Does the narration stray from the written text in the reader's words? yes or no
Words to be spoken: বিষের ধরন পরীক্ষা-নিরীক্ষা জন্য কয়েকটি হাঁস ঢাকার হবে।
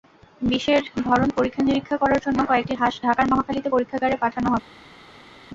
yes